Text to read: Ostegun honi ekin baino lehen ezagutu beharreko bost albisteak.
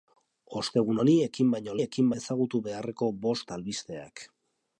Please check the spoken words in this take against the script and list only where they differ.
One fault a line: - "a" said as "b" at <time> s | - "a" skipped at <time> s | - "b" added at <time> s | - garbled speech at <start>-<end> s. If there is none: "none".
- "lehen" said as "ekin" at 1.8 s